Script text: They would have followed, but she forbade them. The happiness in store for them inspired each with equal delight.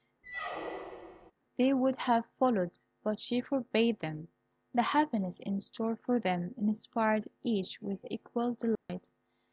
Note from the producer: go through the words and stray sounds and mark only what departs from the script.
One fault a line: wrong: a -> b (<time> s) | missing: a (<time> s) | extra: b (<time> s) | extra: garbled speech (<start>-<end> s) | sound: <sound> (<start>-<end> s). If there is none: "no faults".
sound: squeak (0.2-1.3 s)
sound: dropout (8.8-8.9 s)